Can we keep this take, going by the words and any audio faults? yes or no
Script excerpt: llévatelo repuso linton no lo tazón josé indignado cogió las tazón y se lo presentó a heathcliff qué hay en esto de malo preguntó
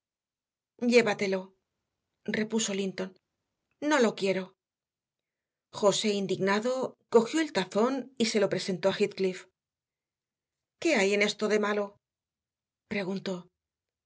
no